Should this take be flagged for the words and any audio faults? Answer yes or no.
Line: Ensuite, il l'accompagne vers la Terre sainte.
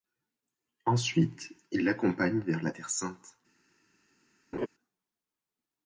yes